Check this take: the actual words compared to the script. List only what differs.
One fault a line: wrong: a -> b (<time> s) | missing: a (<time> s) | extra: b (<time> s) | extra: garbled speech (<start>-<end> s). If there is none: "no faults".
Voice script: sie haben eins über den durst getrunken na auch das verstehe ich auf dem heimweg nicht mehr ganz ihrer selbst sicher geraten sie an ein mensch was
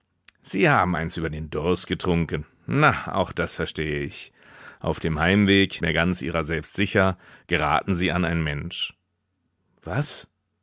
missing: nicht (5.8 s)